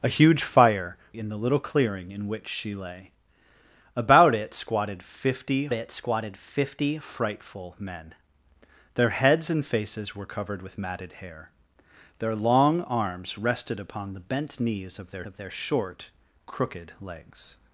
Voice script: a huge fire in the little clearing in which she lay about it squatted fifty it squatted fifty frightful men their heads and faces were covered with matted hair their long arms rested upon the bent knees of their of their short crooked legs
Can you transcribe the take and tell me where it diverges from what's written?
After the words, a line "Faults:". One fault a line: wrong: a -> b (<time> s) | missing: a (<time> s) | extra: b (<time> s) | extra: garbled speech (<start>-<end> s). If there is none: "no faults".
a huge fire in the little clearing in which she lay about it squatted fifty it squatted fifty frightful men their heads and faces were covered with matted hair their long arms rested upon the bent knees of their of their short crooked legs
Faults:
no faults